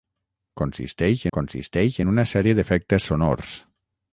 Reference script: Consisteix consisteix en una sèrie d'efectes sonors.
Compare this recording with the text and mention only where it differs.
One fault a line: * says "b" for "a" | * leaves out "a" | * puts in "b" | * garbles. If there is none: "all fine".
all fine